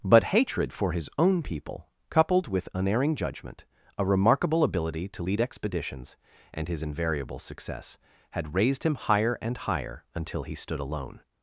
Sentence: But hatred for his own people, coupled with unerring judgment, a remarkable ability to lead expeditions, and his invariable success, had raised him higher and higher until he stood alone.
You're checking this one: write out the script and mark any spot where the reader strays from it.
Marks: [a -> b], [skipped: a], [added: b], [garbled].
But hatred for his own people, coupled with unerring judgment, a remarkable ability to lead expeditions, and his invariable success, had raised him higher and higher until he stood alone.